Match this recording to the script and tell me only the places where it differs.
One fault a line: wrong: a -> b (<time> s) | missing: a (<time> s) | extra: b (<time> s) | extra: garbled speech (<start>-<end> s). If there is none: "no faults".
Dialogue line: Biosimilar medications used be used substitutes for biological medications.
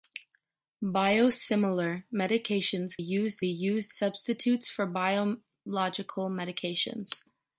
no faults